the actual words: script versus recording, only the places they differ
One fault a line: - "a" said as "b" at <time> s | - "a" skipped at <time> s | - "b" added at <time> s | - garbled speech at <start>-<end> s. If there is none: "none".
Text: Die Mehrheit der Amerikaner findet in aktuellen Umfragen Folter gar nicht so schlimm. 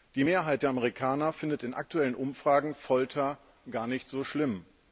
none